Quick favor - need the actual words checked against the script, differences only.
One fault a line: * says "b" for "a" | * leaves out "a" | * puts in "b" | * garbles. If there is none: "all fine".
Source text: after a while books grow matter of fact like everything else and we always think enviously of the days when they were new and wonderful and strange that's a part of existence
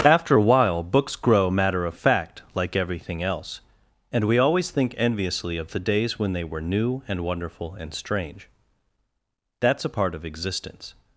all fine